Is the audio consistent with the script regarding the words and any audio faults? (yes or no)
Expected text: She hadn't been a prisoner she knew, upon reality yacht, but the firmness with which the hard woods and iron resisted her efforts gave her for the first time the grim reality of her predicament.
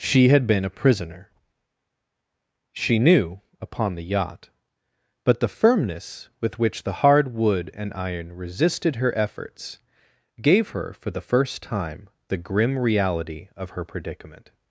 no